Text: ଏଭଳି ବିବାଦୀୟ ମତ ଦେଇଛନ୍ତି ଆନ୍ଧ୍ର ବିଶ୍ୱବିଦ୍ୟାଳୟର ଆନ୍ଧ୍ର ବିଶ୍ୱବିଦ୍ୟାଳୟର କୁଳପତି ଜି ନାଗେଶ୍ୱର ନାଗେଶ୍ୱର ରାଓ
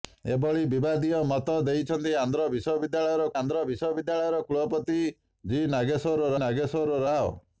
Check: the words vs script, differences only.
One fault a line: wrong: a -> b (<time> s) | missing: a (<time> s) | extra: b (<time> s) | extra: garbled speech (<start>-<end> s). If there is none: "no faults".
no faults